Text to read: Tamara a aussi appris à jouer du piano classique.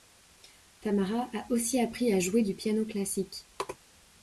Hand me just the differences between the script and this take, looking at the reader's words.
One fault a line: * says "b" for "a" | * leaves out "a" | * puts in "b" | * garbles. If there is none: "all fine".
all fine